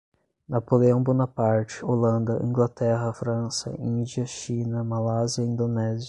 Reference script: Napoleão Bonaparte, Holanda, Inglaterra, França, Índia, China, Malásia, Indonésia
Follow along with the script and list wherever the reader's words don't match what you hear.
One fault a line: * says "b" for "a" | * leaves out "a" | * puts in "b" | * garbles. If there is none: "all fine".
all fine